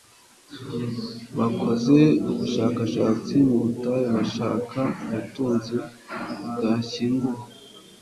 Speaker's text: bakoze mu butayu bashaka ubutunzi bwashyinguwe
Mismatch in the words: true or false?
true